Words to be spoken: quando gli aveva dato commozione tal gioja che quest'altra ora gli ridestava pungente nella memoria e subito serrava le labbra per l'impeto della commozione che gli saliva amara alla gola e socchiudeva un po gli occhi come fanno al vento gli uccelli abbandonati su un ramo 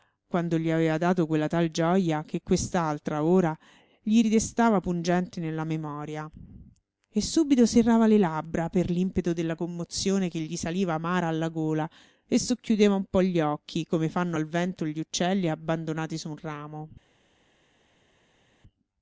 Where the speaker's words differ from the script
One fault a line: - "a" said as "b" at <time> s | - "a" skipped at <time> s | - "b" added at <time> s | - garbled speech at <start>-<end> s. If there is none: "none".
- "commozione" said as "quella" at 1.3 s